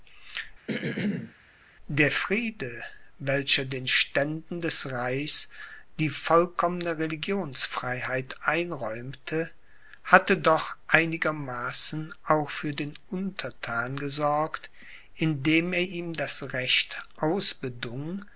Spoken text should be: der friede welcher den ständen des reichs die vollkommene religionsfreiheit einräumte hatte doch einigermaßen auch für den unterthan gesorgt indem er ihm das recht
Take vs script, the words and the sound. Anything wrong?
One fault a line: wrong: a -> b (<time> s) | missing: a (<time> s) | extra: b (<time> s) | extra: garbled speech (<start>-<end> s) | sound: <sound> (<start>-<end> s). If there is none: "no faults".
sound: throat clearing (0.7-1.3 s)